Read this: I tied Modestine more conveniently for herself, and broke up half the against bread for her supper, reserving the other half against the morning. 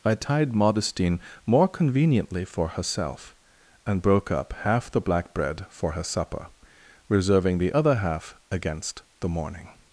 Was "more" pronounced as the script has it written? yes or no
yes